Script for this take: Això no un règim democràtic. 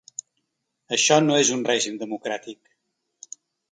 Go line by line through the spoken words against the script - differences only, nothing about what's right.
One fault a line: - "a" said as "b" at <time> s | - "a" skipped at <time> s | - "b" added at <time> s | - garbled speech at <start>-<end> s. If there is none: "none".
- "és" added at 1.4 s